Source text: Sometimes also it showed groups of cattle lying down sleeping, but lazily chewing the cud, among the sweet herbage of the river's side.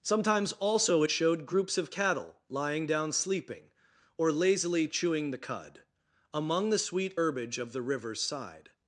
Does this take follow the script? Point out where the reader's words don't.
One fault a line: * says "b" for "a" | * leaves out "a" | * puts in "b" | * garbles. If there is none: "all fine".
* says "or" for "but"